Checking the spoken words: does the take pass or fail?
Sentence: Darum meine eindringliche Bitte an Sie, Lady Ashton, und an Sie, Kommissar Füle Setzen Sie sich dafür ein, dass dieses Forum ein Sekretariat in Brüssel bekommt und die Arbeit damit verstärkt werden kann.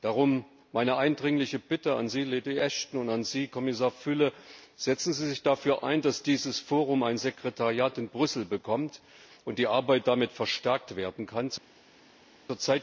pass